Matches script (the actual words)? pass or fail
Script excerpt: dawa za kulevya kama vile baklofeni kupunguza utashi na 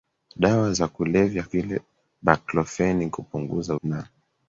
fail